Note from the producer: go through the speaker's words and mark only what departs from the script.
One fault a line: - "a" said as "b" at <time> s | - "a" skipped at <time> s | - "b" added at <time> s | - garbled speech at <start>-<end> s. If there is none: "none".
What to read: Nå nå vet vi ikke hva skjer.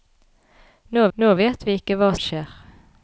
none